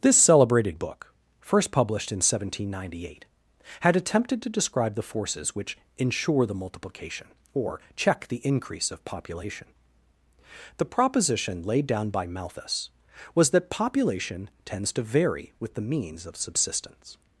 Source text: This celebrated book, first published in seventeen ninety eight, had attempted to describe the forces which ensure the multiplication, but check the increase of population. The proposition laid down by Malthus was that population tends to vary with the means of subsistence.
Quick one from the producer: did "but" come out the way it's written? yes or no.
no